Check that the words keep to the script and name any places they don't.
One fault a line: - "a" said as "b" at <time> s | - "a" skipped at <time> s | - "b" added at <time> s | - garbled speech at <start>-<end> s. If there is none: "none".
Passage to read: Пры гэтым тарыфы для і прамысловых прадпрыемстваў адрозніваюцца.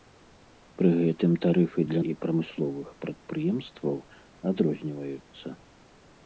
none